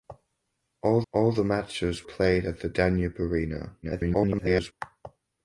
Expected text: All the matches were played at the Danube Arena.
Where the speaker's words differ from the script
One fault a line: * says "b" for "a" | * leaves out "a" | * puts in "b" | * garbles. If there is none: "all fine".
* puts in "all"
* leaves out "were"
* garbles